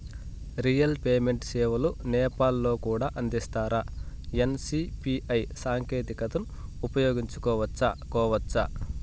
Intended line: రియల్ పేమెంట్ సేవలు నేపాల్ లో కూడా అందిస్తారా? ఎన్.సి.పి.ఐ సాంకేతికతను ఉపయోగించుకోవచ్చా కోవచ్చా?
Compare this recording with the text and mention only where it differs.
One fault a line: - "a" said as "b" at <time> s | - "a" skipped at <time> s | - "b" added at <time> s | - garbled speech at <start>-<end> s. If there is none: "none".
none